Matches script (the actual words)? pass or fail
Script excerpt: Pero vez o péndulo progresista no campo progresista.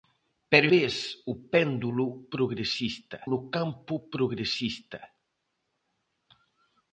pass